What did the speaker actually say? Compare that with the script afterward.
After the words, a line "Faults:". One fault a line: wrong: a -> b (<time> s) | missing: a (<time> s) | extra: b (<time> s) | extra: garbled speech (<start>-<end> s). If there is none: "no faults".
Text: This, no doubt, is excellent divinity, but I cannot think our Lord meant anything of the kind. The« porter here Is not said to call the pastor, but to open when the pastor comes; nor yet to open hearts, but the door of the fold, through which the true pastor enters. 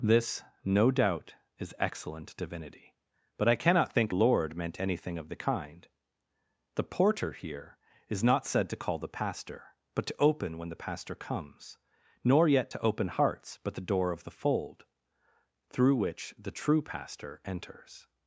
This, no doubt, is excellent divinity, but I cannot think Lord meant anything of the kind. The« porter here Is not said to call the pastor, but to open when the pastor comes; nor yet to open hearts, but the door of the fold, through which the true pastor enters.
Faults:
missing: our (4.2 s)